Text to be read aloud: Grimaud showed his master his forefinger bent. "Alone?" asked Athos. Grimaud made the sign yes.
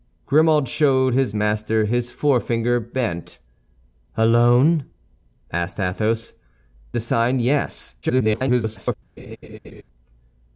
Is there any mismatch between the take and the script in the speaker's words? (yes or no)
yes